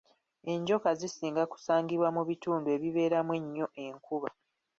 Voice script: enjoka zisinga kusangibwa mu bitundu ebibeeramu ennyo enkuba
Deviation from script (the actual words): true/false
false